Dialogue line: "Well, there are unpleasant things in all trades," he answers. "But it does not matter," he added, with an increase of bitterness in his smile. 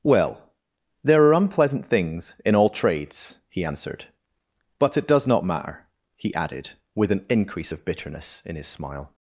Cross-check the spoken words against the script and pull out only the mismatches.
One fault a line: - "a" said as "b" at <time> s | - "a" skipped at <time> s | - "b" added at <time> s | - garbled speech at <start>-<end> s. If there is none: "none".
- "answers" said as "answered" at 3.6 s